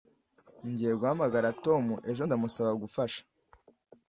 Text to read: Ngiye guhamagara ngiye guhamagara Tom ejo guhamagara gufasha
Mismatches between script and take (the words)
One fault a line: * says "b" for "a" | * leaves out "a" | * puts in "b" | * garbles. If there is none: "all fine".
* leaves out "ngiye guhamagara"
* says "ndamusaba" for "guhamagara"